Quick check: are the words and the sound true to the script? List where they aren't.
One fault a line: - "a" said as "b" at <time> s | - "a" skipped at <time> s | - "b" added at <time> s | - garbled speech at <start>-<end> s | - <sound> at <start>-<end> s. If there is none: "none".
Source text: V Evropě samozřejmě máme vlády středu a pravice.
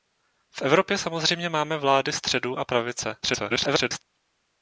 - garbled speech at 3.2-4.0 s